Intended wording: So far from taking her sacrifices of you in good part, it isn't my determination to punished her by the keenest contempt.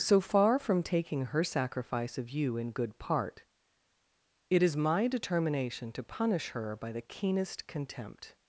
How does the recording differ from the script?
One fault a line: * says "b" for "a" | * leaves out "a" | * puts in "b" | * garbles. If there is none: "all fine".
* says "sacrifice" for "sacrifices"
* says "is" for "isn't"
* says "punish" for "punished"